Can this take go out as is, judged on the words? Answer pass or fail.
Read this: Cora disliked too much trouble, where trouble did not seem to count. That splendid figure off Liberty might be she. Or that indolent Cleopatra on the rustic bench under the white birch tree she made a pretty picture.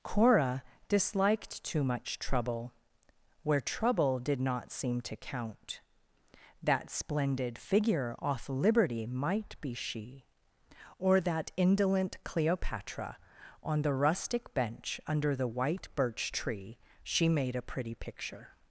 pass